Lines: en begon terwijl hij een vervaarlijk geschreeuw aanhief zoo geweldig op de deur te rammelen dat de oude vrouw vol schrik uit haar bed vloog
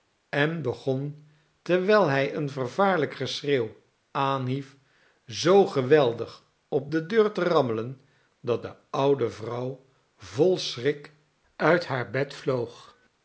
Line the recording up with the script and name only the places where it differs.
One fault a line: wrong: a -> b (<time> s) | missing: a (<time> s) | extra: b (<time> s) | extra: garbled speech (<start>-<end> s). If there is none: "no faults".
no faults